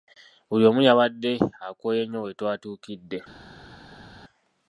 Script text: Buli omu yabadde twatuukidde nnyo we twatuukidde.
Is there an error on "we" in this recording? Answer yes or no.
no